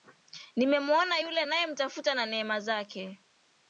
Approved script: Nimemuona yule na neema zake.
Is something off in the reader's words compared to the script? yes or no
yes